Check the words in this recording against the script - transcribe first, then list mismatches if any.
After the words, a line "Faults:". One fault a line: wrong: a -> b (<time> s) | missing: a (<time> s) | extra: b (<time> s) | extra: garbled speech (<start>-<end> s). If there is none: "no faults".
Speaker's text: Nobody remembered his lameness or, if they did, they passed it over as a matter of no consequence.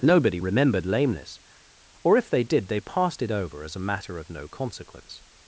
Nobody remembered lameness or, if they did, they passed it over as a matter of no consequence.
Faults:
missing: his (0.9 s)